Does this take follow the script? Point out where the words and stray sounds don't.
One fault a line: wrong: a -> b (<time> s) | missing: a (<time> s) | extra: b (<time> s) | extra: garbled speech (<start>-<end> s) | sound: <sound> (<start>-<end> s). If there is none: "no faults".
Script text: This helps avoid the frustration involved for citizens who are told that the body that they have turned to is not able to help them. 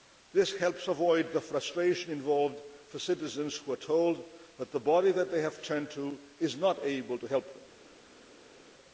no faults